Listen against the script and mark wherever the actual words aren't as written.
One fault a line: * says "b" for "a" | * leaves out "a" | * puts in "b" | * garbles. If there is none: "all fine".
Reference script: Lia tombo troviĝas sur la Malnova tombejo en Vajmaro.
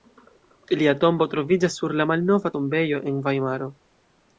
all fine